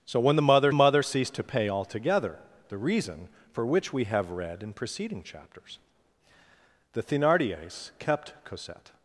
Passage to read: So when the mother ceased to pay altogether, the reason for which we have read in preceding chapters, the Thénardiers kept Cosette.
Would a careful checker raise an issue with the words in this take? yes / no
yes